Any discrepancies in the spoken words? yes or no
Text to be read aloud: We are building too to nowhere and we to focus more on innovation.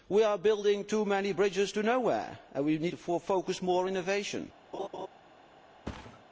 yes